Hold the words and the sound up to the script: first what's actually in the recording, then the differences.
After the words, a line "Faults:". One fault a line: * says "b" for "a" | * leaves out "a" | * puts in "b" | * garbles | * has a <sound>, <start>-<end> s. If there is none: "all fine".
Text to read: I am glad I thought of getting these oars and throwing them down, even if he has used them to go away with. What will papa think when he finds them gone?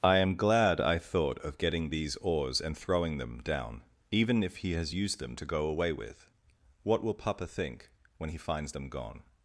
I am glad I thought of getting these oars and throwing them down, even if he has used them to go away with. What will papa think when he finds them gone?
Faults:
all fine